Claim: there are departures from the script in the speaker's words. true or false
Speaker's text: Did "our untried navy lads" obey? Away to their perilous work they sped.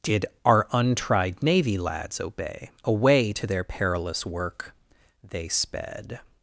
false